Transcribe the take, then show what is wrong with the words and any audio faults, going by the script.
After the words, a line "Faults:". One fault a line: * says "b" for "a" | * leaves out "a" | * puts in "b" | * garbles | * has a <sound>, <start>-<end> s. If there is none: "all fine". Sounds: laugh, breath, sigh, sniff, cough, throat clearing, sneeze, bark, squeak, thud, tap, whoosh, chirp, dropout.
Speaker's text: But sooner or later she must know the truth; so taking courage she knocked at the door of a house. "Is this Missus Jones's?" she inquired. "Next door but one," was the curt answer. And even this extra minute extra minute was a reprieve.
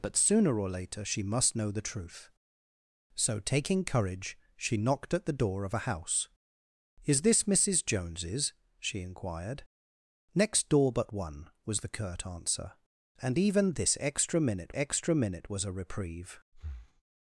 But sooner or later she must know the truth; so taking courage she knocked at the door of a house. "Is this Missus Jones's?" she inquired. "Next door but one," was the curt answer. And even this extra minute extra minute was a reprieve.
Faults:
* has a breath, 16.5-17.0 s